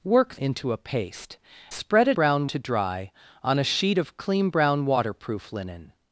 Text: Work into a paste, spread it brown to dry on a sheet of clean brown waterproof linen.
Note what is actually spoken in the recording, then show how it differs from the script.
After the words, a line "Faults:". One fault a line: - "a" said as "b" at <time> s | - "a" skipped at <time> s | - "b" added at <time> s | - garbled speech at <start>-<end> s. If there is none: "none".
Work into a paste, spread it brown to dry on a sheet of clean brown waterproof linen.
Faults:
none